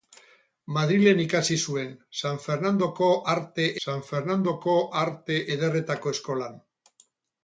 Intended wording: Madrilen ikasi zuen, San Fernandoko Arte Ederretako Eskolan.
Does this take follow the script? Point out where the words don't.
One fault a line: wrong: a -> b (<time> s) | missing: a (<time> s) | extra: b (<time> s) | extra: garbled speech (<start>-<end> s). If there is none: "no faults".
extra: San Fernandoko Arte (3.9 s)